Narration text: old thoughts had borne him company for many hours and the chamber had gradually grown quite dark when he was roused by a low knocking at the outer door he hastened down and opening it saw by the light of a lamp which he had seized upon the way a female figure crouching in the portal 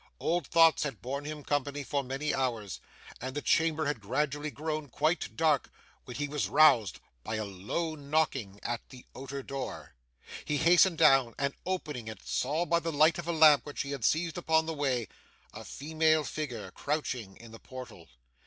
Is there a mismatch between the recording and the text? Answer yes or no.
no